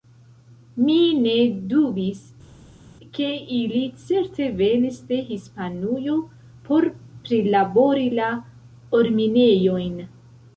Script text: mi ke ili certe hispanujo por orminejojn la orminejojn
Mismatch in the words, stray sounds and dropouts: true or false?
true